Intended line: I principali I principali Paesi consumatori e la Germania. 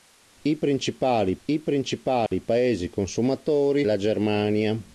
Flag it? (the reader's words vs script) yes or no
no